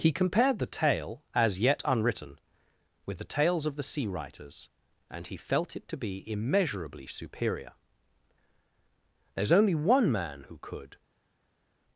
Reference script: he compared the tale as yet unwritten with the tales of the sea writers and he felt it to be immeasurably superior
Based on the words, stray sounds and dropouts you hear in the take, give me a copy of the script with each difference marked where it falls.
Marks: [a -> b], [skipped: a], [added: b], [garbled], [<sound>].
he compared the tale as yet unwritten with the tales of the sea writers and he felt it to be immeasurably superior [added: there's only one man who could]